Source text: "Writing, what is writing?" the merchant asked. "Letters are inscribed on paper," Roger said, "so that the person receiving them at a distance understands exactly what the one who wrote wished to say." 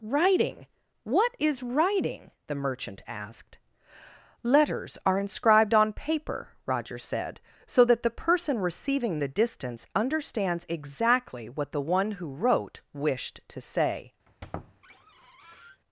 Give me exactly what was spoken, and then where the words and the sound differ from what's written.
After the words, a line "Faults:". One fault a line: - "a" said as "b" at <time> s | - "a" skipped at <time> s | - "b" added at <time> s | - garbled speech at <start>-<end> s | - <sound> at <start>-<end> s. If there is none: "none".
"Writing, what is writing?" the merchant asked. "Letters are inscribed on paper," Roger said, "so that the person receiving a distance understands exactly what the one who wrote wished to say."
Faults:
- "them at" skipped at 9.2 s
- squeak at 14.3-15.8 s